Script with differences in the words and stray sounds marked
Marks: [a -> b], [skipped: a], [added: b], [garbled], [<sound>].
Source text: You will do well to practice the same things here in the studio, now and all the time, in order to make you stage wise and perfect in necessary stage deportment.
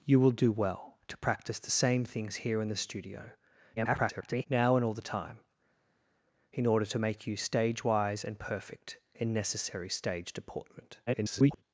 You will do well to practice the same things here in the studio, [garbled] now and all the time, in order to make you stage wise and perfect in necessary stage deportment. [garbled]